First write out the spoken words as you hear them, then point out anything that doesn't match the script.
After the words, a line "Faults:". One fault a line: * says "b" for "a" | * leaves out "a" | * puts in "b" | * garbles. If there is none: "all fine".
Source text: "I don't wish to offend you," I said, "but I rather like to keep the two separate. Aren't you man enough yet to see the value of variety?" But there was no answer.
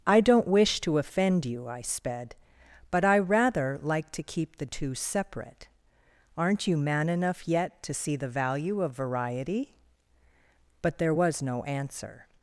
"I don't wish to offend you," I sped, "but I rather like to keep the two separate. Aren't you man enough yet to see the value of variety?" But there was no answer.
Faults:
* says "sped" for "said"